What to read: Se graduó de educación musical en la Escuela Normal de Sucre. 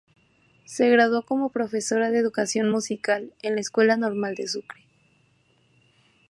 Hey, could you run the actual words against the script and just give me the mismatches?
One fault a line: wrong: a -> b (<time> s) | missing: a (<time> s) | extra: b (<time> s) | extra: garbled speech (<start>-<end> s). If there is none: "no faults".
extra: como profesora (1.2 s)